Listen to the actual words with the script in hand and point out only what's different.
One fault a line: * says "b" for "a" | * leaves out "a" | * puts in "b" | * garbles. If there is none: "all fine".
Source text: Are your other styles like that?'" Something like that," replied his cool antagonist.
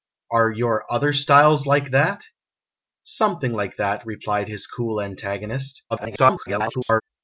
* garbles